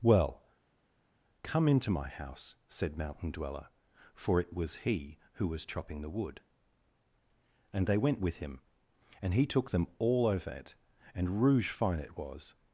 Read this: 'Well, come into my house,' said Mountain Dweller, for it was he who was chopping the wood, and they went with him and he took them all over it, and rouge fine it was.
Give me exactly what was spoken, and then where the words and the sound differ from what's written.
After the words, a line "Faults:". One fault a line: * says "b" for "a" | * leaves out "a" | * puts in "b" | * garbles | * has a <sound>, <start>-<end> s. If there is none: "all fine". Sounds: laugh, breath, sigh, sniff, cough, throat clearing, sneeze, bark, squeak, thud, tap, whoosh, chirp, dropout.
'Well, come into my house,' said Mountain Dweller, for it was he who was chopping the wood, and they went with him and he took them all over it, and rouge fine it was.
Faults:
all fine